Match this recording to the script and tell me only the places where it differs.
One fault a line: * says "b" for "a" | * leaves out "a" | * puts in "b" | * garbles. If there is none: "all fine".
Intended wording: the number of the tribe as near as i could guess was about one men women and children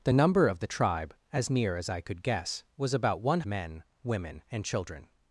all fine